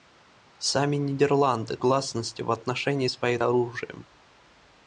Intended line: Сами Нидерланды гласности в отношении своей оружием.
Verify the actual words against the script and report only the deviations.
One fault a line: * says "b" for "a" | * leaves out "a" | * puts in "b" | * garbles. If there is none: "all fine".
all fine